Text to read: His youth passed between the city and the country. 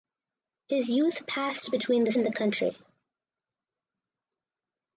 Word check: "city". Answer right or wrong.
wrong